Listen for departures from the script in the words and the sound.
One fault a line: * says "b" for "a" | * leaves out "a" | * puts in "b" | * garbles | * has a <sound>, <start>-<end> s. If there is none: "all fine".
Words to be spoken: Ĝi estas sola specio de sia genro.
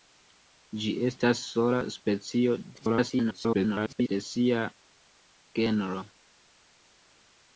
* garbles